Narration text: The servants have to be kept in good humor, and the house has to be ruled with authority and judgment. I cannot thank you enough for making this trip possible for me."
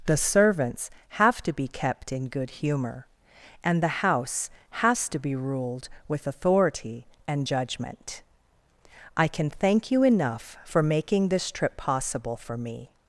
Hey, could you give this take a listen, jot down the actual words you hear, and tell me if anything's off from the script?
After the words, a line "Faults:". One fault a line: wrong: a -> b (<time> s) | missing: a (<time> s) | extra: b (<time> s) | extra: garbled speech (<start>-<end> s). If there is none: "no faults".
The servants have to be kept in good humor, and the house has to be ruled with authority and judgment. I can thank you enough for making this trip possible for me."
Faults:
wrong: cannot -> can (9.3 s)